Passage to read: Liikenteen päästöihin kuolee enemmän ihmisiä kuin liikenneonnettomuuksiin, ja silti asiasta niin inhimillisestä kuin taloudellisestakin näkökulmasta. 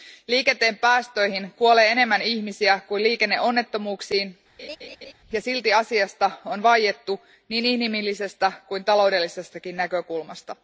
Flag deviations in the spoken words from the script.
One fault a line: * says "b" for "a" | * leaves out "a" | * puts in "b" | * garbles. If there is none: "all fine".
* puts in "on vaiettu"